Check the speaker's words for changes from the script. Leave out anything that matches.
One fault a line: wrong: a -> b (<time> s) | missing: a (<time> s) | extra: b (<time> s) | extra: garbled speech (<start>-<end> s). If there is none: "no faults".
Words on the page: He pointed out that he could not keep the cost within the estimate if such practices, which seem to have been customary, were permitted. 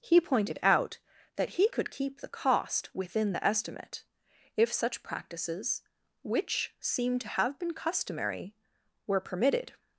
missing: not (1.9 s)